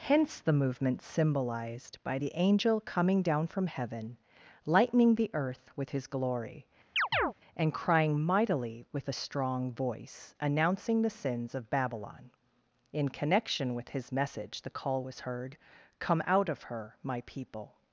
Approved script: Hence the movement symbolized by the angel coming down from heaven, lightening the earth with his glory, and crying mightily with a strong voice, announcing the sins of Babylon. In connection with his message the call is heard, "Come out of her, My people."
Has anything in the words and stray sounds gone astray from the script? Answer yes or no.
yes